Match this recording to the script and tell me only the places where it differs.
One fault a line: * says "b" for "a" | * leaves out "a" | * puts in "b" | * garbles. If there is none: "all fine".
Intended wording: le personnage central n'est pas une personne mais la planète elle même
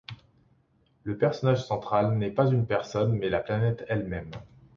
all fine